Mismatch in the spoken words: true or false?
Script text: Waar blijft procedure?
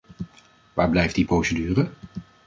true